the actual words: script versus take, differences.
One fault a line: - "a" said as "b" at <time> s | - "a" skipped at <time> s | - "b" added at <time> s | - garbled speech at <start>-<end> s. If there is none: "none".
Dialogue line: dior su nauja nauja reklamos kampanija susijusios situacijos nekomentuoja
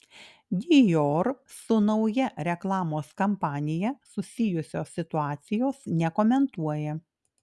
- "nauja" skipped at 2.3 s